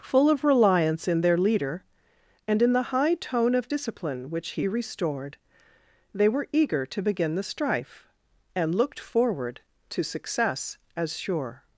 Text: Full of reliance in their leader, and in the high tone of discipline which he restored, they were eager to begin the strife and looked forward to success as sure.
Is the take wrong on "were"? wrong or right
right